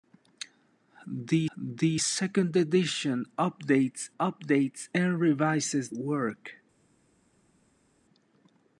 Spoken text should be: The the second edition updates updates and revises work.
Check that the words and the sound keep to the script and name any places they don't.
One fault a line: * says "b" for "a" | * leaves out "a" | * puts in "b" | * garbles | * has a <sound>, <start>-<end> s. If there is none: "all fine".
all fine